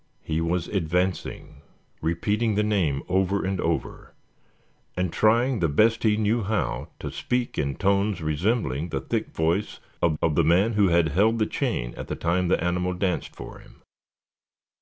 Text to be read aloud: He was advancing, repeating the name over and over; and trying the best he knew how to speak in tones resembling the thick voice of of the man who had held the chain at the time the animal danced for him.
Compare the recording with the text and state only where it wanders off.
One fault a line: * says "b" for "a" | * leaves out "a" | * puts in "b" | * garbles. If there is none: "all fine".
all fine